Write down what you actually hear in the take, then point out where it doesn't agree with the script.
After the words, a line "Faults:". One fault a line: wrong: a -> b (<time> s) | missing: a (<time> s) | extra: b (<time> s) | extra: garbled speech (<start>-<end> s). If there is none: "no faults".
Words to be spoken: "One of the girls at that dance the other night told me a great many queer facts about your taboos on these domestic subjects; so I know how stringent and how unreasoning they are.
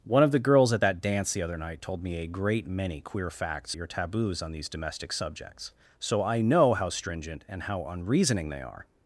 "One of the girls at that dance the other night told me a great many queer facts your taboos on these domestic subjects; so I know how stringent and how unreasoning they are.
Faults:
missing: about (3.8 s)